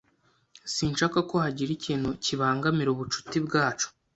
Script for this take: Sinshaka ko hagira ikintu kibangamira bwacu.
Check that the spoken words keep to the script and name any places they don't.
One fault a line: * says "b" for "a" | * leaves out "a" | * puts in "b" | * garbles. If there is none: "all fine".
* puts in "ubucuti"